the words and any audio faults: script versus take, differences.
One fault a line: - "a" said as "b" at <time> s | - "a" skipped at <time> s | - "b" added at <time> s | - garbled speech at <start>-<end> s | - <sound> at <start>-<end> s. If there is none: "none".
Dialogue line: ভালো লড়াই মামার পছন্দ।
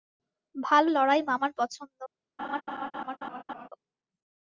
- laugh at 2.4-3.7 s